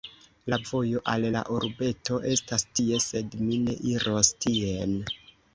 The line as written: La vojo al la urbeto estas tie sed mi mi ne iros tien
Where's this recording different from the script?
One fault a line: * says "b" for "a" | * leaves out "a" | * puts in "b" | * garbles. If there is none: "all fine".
* leaves out "mi"